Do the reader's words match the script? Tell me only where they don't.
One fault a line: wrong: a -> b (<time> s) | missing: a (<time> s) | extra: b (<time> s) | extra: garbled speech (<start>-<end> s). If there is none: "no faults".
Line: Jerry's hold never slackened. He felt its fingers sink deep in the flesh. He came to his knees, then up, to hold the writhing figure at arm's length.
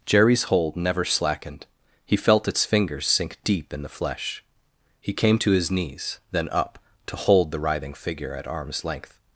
no faults